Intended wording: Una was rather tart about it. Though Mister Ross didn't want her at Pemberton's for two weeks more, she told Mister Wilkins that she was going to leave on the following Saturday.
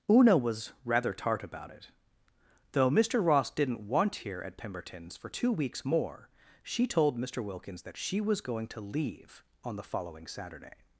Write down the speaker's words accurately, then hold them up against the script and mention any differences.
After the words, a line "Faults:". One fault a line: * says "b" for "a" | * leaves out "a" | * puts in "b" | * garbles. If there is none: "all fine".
Una was rather tart about it. Though Mister Ross didn't want here at Pemberton's for two weeks more, she told Mister Wilkins that she was going to leave on the following Saturday.
Faults:
* says "here" for "her"